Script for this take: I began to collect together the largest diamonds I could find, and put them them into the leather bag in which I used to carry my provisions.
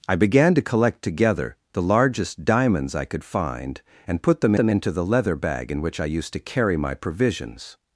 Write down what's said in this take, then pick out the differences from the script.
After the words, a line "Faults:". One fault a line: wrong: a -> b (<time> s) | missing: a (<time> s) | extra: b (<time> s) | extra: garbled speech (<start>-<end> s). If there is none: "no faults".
I began to collect together the largest diamonds I could find, and put them them into the leather bag in which I used to carry my provisions.
Faults:
no faults